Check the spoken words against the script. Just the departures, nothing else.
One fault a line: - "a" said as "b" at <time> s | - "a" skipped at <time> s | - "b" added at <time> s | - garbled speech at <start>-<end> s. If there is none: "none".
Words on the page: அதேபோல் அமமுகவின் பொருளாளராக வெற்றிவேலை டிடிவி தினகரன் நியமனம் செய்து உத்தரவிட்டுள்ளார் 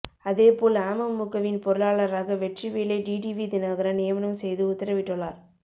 none